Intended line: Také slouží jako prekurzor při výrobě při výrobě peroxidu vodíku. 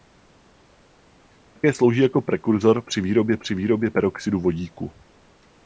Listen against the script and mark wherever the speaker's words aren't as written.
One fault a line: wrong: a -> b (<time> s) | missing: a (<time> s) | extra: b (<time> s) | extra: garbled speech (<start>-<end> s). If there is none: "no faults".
no faults